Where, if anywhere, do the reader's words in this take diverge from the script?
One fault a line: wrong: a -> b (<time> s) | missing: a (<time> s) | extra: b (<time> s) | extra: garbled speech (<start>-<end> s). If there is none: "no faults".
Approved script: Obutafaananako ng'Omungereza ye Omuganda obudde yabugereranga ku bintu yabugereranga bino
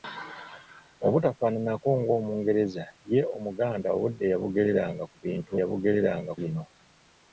no faults